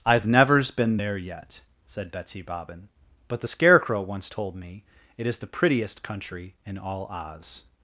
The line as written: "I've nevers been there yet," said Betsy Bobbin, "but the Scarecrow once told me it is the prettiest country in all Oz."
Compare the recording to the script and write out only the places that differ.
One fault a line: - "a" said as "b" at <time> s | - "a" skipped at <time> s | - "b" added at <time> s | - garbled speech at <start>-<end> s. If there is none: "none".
none